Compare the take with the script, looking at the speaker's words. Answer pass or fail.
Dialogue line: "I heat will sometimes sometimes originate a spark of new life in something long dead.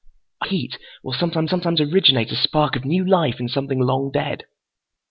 pass